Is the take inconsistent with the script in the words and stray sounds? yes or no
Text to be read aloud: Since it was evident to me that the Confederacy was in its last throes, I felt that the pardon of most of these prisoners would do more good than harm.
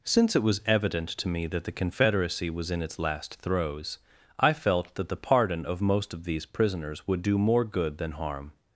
no